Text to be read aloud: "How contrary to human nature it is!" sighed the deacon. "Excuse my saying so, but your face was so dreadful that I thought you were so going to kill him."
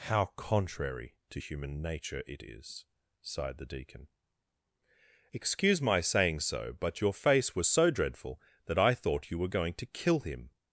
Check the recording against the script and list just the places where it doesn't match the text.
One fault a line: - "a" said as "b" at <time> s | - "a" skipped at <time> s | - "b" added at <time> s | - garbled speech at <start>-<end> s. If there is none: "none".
- "so" skipped at 9.5 s